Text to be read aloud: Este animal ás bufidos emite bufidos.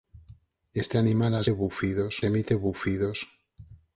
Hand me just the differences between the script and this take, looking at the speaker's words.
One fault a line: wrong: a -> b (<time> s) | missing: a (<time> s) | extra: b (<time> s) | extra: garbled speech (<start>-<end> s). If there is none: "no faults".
no faults